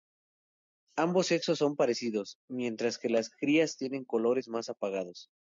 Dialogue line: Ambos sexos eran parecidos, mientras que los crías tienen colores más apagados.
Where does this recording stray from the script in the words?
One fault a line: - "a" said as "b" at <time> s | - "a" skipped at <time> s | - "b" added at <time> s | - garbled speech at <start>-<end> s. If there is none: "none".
- "eran" said as "son" at 1.6 s
- "los" said as "las" at 3.1 s